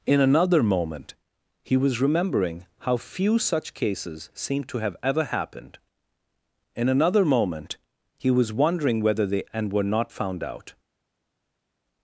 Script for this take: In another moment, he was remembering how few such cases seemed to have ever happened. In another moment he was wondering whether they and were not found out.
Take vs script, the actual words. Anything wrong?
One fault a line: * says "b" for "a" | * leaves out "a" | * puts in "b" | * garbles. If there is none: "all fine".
all fine